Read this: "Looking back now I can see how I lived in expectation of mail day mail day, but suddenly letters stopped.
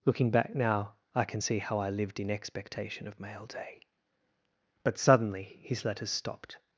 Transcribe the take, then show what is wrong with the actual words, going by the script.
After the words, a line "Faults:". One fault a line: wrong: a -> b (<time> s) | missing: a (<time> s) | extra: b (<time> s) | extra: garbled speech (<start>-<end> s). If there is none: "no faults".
"Looking back now I can see how I lived in expectation of mail day, but suddenly his letters stopped.
Faults:
missing: mail day (3.8 s)
extra: his (5.6 s)